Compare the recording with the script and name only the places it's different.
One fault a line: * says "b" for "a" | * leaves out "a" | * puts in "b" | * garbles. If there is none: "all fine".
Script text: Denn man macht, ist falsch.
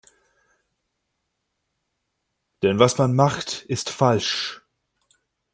* puts in "was"